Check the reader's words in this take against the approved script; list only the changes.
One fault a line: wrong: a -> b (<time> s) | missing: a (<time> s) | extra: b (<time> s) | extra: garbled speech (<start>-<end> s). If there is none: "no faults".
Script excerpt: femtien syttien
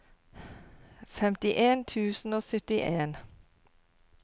extra: tusen og (1.9 s)